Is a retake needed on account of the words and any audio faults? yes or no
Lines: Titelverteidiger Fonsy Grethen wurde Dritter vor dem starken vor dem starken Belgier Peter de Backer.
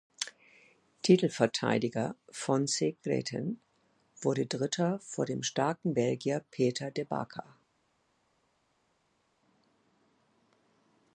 yes